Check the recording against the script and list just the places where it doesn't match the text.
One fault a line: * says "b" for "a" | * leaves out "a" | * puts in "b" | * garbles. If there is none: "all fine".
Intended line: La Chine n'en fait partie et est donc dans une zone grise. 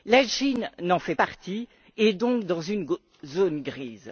all fine